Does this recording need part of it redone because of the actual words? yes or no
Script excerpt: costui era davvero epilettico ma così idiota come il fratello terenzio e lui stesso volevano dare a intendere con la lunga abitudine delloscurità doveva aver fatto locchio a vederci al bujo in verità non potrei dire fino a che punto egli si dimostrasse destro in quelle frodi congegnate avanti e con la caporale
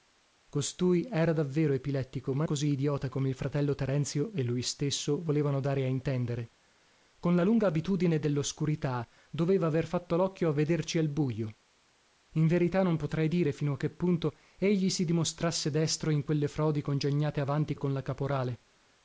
no